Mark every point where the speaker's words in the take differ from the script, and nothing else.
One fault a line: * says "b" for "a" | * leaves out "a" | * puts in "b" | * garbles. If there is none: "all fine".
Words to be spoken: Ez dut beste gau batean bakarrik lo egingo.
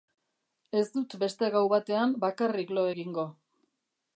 all fine